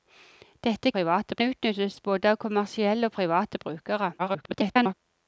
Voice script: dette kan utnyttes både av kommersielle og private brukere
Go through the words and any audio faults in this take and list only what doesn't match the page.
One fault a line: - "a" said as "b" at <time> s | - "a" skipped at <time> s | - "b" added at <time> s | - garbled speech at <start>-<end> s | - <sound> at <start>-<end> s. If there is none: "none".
- "kan" said as "private" at 0.9 s
- garbled speech at 4.2-4.9 s